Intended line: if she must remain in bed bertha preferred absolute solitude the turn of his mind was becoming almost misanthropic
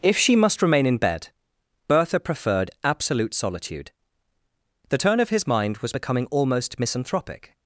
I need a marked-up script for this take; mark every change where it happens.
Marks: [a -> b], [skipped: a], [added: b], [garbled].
if she must remain in bed bertha preferred absolute solitude the turn of his mind was becoming almost misanthropic